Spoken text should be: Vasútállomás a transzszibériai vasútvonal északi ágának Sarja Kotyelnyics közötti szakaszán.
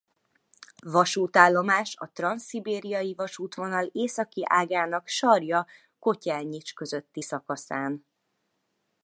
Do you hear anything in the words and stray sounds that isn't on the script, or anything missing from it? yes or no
no